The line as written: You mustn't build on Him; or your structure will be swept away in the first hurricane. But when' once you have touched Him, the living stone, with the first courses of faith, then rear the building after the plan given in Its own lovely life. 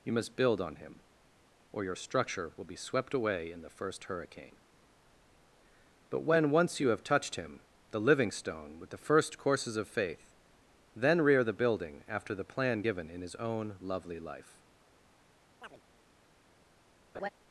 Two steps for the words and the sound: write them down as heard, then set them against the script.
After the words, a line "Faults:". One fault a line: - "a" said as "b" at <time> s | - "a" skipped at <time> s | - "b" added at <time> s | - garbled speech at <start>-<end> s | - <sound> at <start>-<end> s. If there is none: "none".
You must build on Him; or your structure will be swept away in the first hurricane. But when' once you have touched Him, the living stone, with the first courses of faith, then rear the building after the plan given in His own lovely life.
Faults:
- "mustn't" said as "must" at 0.1 s
- "Its" said as "His" at 13.2 s
- chirp at 15.6-15.8 s
- laugh at 17.1-17.3 s